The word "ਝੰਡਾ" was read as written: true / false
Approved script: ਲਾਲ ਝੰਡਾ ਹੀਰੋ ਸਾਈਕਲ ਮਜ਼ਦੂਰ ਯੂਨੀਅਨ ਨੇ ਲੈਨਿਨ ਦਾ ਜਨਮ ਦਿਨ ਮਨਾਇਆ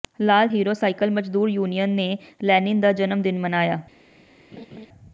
false